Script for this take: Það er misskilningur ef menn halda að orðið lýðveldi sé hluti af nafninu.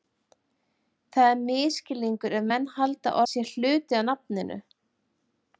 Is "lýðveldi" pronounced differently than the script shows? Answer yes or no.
yes